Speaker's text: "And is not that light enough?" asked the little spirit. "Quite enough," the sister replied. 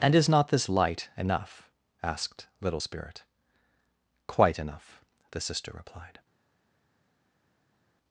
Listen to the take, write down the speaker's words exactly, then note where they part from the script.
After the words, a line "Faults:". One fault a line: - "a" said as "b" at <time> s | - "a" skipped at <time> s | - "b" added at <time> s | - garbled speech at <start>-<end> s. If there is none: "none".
"And is not this light enough?" asked little spirit. "Quite enough," the sister replied.
Faults:
- "that" said as "this" at 0.5 s
- "the" skipped at 2.5 s